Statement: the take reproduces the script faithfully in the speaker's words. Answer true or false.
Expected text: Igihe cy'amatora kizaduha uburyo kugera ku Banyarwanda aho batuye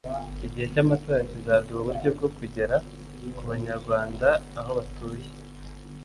false